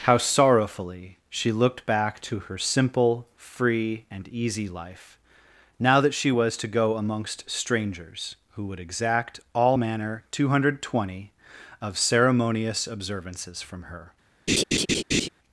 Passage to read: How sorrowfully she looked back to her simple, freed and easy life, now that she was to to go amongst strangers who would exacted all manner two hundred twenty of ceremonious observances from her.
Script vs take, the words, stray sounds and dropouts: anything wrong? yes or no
yes